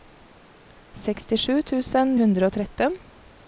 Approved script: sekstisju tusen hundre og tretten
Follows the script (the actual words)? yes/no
yes